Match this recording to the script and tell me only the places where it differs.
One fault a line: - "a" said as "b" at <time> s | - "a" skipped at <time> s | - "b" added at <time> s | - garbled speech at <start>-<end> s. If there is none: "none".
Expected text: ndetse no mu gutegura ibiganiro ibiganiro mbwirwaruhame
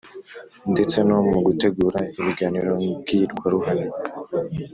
- "ibiganiro" skipped at 2.7 s